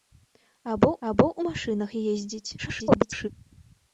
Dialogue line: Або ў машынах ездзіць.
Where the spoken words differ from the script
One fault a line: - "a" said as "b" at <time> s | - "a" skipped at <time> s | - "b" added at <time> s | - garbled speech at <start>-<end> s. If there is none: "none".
- "або" added at 1.1 s
- garbled speech at 2.6-3.3 s